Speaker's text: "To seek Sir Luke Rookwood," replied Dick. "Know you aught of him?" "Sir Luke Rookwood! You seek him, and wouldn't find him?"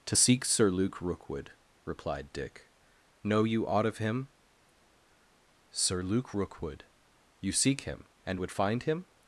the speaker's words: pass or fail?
fail